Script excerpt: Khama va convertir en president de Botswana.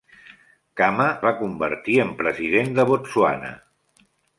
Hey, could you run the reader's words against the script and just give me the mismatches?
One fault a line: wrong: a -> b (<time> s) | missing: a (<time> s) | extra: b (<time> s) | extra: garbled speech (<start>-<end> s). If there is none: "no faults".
no faults